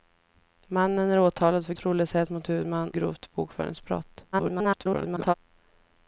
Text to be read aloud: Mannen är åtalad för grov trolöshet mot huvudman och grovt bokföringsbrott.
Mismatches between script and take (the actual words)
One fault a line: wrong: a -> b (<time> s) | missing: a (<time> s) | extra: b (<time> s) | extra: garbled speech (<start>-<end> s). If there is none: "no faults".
missing: grov (1.7 s)
missing: och (2.9 s)
extra: garbled speech (4.3-5.3 s)